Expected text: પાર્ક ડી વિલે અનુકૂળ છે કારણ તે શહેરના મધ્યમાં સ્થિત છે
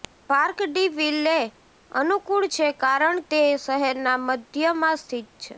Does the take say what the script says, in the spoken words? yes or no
yes